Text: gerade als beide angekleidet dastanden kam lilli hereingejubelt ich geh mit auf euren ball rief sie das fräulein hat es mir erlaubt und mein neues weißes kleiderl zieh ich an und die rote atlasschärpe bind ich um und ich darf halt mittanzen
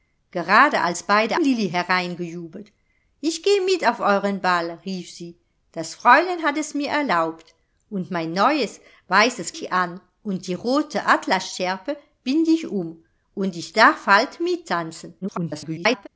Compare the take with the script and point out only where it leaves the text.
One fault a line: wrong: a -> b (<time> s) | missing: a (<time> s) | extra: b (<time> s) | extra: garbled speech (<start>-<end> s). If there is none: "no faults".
missing: angekleidet dastanden kam (1.4 s)
missing: kleiderl zieh (9.5 s)
extra: garbled speech (15.2-16.1 s)